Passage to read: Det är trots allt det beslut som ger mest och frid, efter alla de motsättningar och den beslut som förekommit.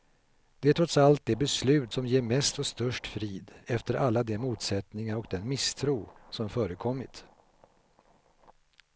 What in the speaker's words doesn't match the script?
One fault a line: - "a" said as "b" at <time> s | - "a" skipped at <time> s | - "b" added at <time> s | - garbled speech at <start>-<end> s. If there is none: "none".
- "störst" added at 2.7 s
- "beslut" said as "misstro" at 5.5 s